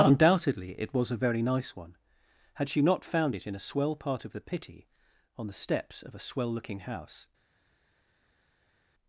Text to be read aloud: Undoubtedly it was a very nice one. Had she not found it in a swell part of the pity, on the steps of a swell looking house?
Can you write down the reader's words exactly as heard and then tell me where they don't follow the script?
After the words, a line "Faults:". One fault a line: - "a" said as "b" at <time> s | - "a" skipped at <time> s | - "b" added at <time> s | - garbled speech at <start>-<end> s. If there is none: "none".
Undoubtedly it was a very nice one. Had she not found it in a swell part of the pity, on the steps of a swell looking house?
Faults:
none